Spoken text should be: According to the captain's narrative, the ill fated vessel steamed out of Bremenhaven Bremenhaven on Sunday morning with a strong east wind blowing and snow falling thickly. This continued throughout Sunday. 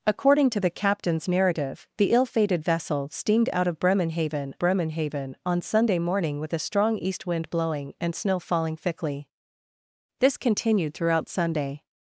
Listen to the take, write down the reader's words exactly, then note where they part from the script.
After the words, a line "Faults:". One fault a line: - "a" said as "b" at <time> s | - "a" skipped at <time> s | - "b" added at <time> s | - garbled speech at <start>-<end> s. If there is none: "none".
According to the captain's narrative, the ill fated vessel steamed out of Bremenhaven Bremenhaven on Sunday morning with a strong east wind blowing and snow falling thickly. This continued throughout Sunday.
Faults:
none